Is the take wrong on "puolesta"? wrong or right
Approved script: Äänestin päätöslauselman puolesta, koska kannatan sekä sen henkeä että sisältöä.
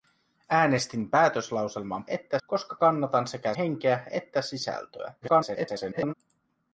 wrong